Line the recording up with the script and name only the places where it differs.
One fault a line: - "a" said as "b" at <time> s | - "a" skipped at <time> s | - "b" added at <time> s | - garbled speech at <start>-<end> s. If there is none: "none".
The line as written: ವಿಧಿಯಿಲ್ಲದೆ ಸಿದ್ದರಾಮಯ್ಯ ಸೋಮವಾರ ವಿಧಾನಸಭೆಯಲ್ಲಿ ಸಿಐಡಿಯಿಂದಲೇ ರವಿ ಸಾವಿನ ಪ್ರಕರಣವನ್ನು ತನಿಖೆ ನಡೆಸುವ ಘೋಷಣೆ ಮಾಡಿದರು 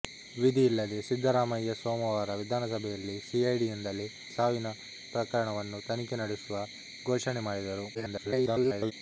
- "ರವಿ" skipped at 4.1 s
- garbled speech at 7.9-8.9 s